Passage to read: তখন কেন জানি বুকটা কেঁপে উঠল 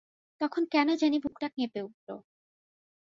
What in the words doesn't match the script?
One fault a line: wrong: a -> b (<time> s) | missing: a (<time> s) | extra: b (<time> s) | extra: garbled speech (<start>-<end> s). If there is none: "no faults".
no faults